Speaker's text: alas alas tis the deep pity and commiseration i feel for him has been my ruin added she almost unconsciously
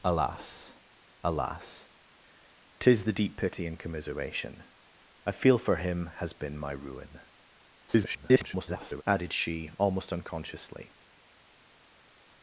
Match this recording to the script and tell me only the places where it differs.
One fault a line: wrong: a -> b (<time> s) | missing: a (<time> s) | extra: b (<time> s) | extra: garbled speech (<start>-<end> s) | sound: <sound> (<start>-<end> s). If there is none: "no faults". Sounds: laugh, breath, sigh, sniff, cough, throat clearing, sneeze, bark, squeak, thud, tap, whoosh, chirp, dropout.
extra: garbled speech (7.9-9.0 s)